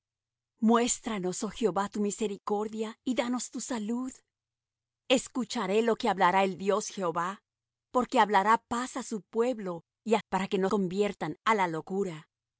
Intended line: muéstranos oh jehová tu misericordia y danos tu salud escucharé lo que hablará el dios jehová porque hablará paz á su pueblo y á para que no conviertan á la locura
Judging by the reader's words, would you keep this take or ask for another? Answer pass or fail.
pass